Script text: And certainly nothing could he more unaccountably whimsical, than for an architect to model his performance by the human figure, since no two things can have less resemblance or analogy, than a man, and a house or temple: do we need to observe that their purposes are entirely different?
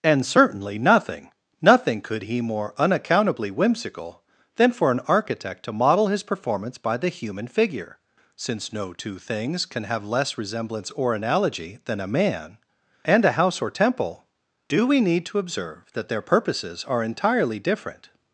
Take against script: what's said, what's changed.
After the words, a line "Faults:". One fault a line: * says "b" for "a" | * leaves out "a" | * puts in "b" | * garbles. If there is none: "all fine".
And certainly nothing nothing could he more unaccountably whimsical, than for an architect to model his performance by the human figure, since no two things can have less resemblance or analogy, than a man, and a house or temple: do we need to observe that their purposes are entirely different?
Faults:
* puts in "nothing"